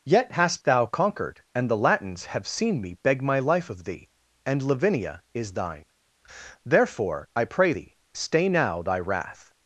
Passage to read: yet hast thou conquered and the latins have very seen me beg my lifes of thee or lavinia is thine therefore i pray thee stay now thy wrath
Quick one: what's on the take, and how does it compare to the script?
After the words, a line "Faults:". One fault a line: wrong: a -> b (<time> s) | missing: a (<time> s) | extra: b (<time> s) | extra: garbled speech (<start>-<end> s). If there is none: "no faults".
yet hast thou conquered and the latins have seen me beg my life of thee and lavinia is thine therefore i pray thee stay now thy wrath
Faults:
missing: very (2.5 s)
wrong: lifes -> life (3.4 s)
wrong: or -> and (4.5 s)